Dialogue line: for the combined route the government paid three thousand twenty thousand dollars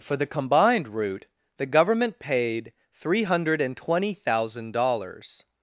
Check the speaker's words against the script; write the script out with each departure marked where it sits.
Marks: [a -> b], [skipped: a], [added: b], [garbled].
for the combined route the government paid three [thousand -> hundred] twenty thousand dollars